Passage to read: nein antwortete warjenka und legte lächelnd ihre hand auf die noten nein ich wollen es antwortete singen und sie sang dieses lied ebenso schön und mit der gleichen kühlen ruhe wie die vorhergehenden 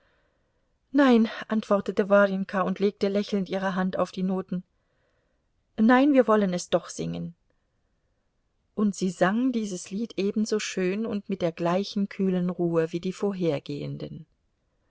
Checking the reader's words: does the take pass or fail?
fail